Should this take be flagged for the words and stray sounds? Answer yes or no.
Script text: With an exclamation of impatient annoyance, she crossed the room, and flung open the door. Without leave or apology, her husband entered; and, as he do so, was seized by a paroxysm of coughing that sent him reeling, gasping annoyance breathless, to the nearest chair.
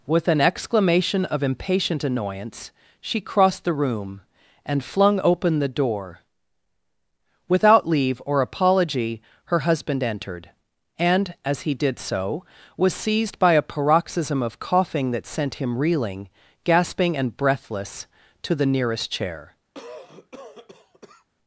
yes